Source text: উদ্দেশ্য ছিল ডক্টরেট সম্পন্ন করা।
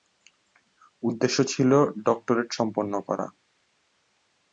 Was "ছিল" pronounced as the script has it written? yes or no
yes